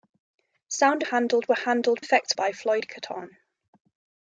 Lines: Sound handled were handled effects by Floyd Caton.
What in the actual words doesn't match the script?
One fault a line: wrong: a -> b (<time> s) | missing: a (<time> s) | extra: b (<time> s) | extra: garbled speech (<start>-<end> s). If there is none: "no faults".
no faults